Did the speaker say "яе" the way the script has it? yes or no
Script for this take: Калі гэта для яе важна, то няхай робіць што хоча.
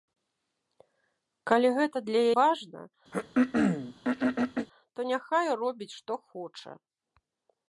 no